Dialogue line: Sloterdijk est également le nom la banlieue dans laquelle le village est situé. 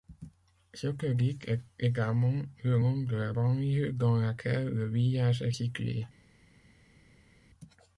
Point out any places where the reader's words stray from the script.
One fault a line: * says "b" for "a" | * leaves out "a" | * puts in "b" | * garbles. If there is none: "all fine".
* puts in "de"